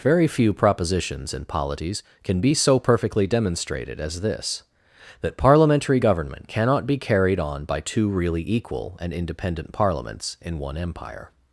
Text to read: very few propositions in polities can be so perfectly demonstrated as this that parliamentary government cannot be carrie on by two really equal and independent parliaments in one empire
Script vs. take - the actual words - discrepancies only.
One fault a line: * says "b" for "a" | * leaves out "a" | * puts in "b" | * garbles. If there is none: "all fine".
* says "carried" for "carrie"